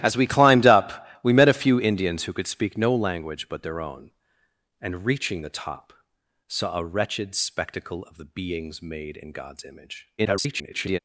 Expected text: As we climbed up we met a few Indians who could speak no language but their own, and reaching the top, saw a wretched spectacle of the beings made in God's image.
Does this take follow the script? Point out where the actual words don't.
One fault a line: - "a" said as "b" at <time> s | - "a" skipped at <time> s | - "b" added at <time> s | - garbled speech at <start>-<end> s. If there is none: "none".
- garbled speech at 10.2-11.0 s